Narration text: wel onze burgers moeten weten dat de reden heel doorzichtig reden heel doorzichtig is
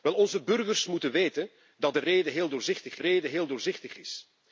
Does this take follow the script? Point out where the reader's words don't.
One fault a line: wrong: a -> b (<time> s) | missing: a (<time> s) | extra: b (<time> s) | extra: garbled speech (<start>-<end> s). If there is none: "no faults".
no faults